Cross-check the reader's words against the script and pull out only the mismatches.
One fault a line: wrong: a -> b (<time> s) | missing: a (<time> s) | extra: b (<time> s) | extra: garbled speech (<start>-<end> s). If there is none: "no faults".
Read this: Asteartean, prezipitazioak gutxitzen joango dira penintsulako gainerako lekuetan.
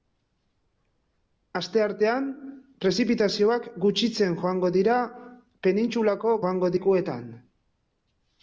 wrong: gainerako -> joango (6.4 s)